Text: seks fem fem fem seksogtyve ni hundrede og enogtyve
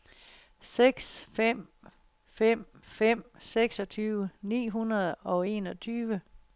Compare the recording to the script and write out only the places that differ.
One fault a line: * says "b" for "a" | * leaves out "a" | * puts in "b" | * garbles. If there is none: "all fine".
all fine